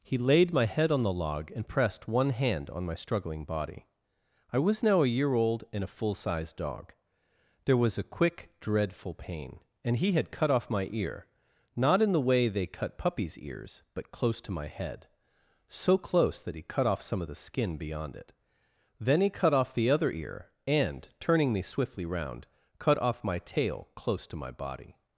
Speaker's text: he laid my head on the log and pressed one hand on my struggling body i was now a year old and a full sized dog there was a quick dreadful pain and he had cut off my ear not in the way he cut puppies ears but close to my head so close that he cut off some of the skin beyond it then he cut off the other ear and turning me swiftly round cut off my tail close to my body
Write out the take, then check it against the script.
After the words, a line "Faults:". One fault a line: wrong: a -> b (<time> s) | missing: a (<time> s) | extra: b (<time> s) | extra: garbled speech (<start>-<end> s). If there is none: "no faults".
he laid my head on the log and pressed one hand on my struggling body i was now a year old and a full sized dog there was a quick dreadful pain and he had cut off my ear not in the way they cut puppies ears but close to my head so close that he cut off some of the skin beyond it then he cut off the other ear and turning me swiftly round cut off my tail close to my body
Faults:
wrong: he -> they (12.5 s)